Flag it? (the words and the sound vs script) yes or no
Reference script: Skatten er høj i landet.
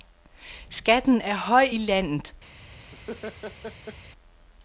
yes